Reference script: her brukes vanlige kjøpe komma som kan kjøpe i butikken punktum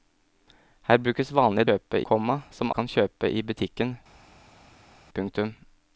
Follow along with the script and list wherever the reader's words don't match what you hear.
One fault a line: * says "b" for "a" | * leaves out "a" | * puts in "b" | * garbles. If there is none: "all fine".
all fine